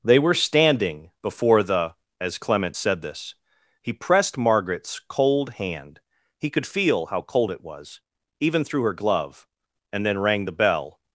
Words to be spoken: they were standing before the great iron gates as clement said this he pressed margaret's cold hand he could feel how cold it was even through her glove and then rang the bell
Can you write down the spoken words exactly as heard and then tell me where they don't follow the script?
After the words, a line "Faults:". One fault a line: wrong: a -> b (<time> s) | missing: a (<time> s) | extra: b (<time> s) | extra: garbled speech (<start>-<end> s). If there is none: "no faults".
they were standing before the as clement said this he pressed margaret's cold hand he could feel how cold it was even through her glove and then rang the bell
Faults:
missing: great iron gates (1.9 s)